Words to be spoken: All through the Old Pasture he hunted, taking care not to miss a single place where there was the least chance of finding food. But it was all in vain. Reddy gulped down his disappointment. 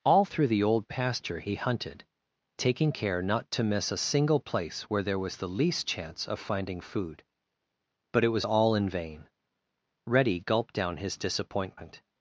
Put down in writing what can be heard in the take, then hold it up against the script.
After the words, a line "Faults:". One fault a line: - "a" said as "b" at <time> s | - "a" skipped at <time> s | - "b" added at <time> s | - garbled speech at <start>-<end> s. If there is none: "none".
All through the Old Pasture he hunted, taking care not to miss a single place where there was the least chance of finding food. But it was all in vain. Reddy gulped down his disappointment.
Faults:
none